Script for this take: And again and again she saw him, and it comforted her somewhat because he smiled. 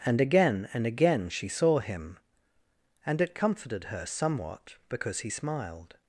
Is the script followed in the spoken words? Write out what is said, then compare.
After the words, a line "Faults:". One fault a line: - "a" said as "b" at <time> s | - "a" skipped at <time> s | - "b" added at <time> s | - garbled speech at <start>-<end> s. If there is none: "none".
And again and again she saw him, and it comforted her somewhat because he smiled.
Faults:
none